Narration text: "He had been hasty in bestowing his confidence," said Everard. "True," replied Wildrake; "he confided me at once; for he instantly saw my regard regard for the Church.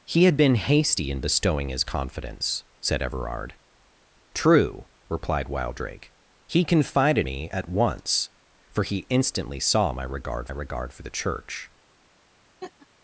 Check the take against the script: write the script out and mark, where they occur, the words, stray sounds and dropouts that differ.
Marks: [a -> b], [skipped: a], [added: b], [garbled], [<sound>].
"He had been hasty in bestowing his confidence," said Everard. "True," replied Wildrake; "he confided me at once; for he instantly saw my regard regard for the Church. [laugh]